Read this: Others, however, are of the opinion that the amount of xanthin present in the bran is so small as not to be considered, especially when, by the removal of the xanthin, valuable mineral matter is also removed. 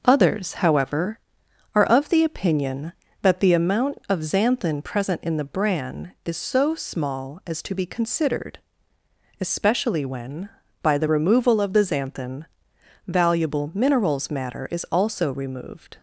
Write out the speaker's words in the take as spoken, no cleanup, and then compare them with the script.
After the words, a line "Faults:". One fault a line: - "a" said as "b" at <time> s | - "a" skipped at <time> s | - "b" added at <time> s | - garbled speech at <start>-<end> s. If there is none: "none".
Others, however, are of the opinion that the amount of xanthin present in the bran is so small as to be considered, especially when, by the removal of the xanthin, valuable minerals matter is also removed.
Faults:
- "not" skipped at 7.6 s
- "mineral" said as "minerals" at 13.7 s